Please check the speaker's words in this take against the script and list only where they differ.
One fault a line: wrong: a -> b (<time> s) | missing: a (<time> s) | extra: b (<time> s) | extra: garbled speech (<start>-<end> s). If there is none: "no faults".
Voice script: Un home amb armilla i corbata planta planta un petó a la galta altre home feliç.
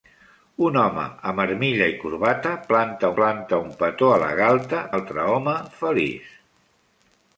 no faults